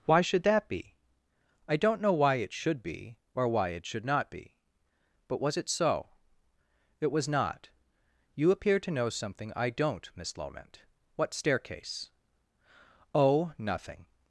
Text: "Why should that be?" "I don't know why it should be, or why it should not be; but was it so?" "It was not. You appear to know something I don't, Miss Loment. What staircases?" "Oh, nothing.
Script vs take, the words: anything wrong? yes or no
yes